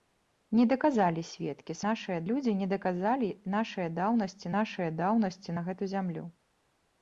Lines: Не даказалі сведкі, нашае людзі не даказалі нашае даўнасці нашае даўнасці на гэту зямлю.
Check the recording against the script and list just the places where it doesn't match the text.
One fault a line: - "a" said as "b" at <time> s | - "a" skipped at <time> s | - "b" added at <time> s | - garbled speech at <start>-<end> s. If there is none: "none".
none